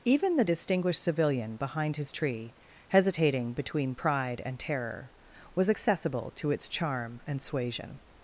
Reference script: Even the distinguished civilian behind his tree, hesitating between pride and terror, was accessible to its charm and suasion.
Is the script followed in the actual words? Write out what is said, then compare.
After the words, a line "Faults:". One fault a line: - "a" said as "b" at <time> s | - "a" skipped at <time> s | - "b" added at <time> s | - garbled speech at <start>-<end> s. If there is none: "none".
Even the distinguished civilian behind his tree, hesitating between pride and terror, was accessible to its charm and suasion.
Faults:
none